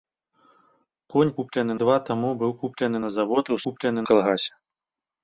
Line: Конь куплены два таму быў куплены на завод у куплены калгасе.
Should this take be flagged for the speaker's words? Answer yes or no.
no